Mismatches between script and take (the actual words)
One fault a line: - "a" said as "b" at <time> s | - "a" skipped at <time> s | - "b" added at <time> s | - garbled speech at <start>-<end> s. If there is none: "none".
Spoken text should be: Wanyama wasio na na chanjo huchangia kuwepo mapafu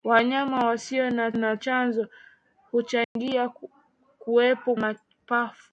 none